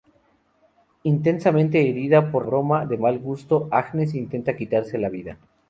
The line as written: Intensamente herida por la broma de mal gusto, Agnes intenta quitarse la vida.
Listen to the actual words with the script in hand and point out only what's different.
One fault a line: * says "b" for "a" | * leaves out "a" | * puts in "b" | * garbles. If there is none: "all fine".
* leaves out "la"